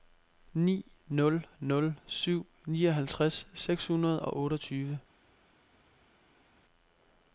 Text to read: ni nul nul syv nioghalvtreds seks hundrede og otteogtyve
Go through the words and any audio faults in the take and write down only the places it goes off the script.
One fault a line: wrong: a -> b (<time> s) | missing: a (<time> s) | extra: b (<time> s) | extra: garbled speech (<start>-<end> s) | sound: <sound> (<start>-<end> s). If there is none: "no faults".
no faults